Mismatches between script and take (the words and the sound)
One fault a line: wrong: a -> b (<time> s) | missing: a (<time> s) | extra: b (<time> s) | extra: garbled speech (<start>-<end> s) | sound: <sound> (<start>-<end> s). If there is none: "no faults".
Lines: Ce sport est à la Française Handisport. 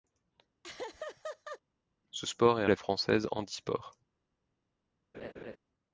sound: laugh (0.6-1.6 s)
sound: laugh (5.1-5.6 s)